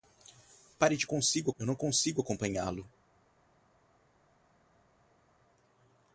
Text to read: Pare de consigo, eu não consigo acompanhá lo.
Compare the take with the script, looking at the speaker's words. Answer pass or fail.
pass